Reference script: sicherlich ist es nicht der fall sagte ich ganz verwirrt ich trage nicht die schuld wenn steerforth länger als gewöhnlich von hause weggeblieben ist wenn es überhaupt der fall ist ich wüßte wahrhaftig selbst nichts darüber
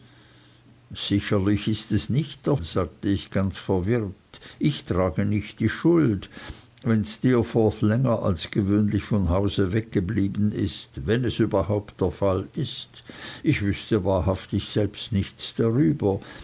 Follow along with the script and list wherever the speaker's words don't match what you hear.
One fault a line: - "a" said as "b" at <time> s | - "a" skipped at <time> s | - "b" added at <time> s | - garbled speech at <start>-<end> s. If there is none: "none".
- "fall" skipped at 2.5 s